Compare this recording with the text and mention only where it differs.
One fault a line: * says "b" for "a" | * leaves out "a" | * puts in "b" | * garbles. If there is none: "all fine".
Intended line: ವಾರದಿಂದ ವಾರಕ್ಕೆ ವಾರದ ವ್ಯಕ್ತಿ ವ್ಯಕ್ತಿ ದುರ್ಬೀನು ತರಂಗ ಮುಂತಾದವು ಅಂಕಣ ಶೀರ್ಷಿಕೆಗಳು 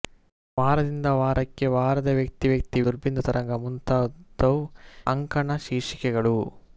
all fine